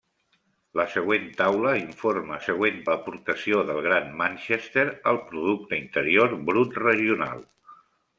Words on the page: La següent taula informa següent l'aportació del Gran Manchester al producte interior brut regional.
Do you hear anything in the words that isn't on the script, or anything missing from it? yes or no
no